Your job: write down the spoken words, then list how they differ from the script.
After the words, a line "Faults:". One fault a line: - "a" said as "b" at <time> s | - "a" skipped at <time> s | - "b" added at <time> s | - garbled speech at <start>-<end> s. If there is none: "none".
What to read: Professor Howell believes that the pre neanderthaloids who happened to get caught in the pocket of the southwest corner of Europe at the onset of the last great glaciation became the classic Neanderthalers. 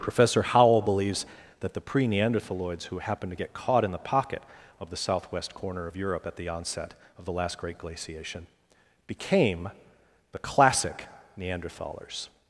Professor Howell believes that the pre neanderthaloids who happened to get caught in the pocket of the southwest corner of Europe at the onset of the last great glaciation became the classic Neanderthalers.
Faults:
none